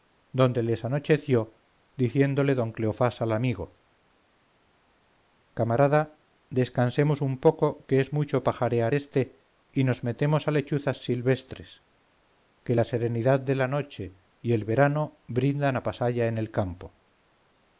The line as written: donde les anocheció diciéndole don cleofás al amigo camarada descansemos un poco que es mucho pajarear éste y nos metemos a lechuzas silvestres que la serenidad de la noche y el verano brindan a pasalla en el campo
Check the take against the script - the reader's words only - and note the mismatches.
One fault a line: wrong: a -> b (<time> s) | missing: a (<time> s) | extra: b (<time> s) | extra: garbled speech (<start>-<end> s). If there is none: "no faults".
no faults